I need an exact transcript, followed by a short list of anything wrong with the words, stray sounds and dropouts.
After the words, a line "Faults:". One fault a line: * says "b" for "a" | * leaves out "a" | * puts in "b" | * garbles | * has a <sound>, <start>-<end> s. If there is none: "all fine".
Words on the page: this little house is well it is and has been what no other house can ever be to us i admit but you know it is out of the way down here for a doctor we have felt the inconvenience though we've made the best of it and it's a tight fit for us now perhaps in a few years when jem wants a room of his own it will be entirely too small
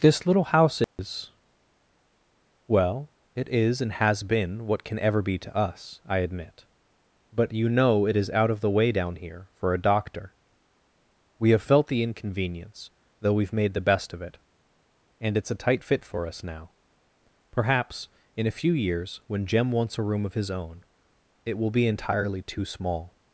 this little house is well it is and has been what can ever be to us i admit but you know it is out of the way down here for a doctor we have felt the inconvenience though we've made the best of it and it's a tight fit for us now perhaps in a few years when jem wants a room of his own it will be entirely too small
Faults:
* has a dropout, 0.8-1.0 s
* leaves out "no other house"